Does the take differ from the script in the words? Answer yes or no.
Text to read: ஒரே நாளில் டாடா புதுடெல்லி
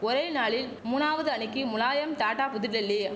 yes